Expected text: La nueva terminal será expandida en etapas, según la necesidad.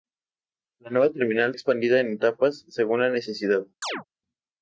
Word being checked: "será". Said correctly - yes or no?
no